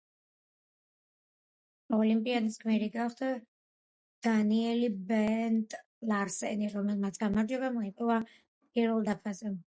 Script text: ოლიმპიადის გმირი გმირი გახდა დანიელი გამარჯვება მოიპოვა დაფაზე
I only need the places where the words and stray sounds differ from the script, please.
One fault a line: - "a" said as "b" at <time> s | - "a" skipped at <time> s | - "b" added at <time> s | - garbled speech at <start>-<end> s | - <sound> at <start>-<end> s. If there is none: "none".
- "გმირი" skipped at 2.9 s
- "ბენტ ლარსენი რომელმაც" added at 5.1 s
- "პირველ" added at 8.3 s